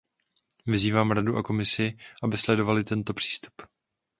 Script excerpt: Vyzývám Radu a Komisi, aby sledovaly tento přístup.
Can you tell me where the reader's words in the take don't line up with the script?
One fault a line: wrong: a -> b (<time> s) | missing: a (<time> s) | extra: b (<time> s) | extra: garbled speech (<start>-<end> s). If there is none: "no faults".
no faults